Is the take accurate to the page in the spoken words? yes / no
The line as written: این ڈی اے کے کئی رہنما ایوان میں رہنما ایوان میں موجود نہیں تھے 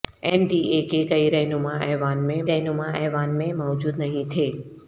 yes